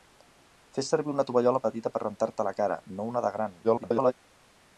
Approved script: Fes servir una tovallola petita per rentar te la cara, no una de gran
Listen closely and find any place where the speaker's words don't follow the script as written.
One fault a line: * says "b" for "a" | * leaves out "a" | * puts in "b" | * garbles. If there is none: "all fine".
* garbles